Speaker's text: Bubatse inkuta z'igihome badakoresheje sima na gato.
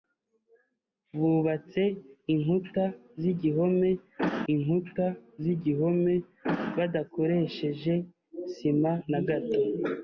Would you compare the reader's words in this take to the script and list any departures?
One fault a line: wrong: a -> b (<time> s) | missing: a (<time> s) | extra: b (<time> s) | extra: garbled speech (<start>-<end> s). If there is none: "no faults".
extra: inkuta z'igihome (4.5 s)